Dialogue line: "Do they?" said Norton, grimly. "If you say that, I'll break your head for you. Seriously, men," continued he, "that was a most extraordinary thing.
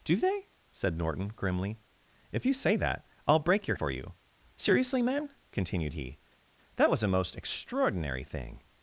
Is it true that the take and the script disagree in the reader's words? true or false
true